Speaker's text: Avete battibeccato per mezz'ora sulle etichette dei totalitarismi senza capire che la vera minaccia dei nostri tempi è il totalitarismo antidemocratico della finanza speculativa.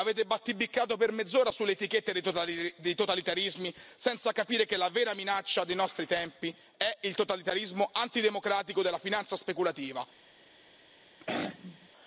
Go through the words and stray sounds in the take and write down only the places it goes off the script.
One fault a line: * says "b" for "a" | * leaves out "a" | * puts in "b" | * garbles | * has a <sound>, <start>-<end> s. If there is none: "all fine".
* has a throat clearing, 11.2-11.9 s